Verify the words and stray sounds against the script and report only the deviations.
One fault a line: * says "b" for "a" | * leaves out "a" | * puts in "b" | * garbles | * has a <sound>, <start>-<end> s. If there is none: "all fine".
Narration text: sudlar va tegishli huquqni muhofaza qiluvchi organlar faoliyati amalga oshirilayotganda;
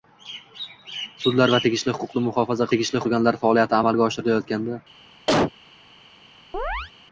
* says "tegishli" for "qiluvchi"
* has a cough, 5.3-5.5 s
* has a chirp, 6.5-6.9 s